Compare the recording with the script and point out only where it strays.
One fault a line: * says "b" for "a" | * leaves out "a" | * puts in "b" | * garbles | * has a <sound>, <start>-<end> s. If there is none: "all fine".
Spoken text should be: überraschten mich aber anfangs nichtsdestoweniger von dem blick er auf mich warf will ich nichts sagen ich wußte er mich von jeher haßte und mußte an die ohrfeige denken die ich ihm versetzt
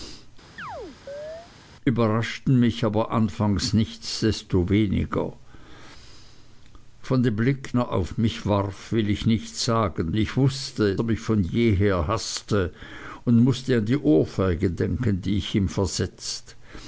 * has a chirp, 0.6-1.5 s